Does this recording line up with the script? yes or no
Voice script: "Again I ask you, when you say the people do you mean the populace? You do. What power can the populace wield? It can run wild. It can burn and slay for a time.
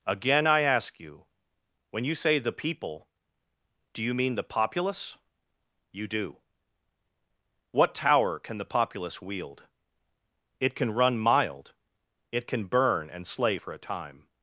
no